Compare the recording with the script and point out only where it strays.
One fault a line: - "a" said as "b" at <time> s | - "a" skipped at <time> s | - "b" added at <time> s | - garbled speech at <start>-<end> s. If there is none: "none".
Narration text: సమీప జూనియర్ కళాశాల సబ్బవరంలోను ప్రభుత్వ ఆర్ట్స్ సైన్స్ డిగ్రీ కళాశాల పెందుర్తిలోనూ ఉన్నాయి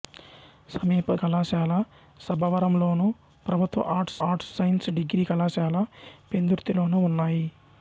- "జూనియర్" skipped at 1.1 s
- "ఆర్ట్స్" added at 4.3 s